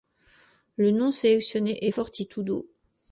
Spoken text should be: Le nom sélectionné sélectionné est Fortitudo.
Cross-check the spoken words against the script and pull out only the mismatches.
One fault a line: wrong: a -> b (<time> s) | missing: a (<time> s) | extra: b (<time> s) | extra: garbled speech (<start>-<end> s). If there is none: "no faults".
missing: sélectionné (1.9 s)